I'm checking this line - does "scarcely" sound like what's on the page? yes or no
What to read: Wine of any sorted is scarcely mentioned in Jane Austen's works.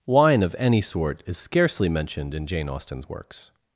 yes